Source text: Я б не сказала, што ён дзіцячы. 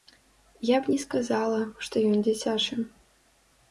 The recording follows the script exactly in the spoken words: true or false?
true